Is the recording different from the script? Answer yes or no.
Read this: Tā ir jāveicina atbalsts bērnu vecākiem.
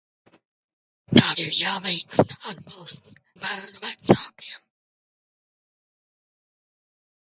no